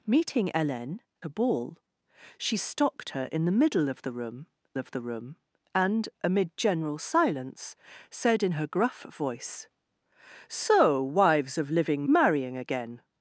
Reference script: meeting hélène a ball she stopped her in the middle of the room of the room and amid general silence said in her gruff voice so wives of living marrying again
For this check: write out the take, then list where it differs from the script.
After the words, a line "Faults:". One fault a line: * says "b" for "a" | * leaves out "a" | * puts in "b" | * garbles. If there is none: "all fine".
meeting hélène a ball she stopped her in the middle of the room of the room and amid general silence said in her gruff voice so wives of living marrying again
Faults:
all fine